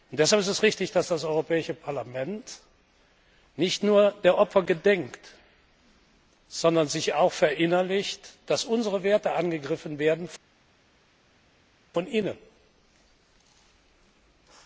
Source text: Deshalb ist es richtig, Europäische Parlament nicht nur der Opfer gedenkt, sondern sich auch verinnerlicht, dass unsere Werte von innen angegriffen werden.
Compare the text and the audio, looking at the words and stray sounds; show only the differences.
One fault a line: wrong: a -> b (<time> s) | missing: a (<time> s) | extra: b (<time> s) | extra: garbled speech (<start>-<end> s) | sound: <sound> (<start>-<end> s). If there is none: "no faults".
extra: dass das (0.9 s)